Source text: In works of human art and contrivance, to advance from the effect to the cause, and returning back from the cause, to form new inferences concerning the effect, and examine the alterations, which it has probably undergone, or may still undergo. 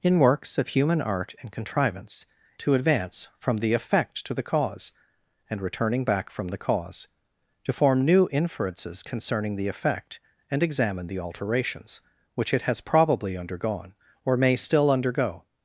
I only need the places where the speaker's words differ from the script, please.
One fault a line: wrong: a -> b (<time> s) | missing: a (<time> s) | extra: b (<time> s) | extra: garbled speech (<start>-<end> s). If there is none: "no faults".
no faults